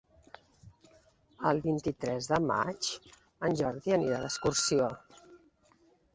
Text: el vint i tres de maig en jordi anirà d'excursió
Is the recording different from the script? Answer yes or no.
no